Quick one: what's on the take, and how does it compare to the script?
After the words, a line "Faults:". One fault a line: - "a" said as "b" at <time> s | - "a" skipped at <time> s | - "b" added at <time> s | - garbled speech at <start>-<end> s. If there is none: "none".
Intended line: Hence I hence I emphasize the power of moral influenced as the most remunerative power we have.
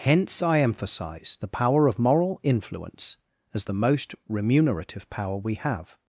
Hence I emphasize the power of moral influence as the most remunerative power we have.
Faults:
- "hence I" skipped at 0.6 s
- "influenced" said as "influence" at 2.4 s